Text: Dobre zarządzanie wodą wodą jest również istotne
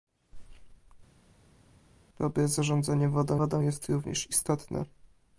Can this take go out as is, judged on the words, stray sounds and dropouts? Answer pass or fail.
pass